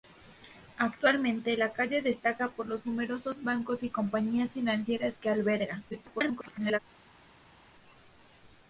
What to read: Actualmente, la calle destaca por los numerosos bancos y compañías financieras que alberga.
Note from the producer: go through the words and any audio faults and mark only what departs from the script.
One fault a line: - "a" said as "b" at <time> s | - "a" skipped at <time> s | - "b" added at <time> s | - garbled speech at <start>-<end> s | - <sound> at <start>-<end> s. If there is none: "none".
- garbled speech at 5.9-6.8 s